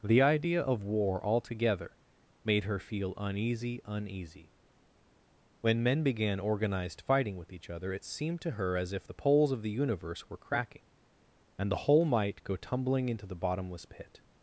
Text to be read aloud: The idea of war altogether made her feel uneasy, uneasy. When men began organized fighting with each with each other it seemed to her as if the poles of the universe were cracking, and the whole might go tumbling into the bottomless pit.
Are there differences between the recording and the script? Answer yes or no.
yes